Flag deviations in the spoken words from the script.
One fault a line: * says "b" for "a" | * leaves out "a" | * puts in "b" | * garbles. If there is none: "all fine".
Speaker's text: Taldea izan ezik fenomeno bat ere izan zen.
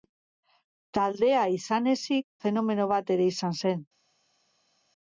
all fine